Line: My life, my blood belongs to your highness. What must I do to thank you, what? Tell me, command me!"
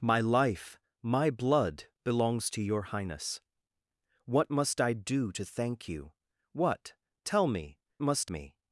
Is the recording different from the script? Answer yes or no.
yes